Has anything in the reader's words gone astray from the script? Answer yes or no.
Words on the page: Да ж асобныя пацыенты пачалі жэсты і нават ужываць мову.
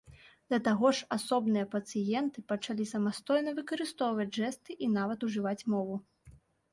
yes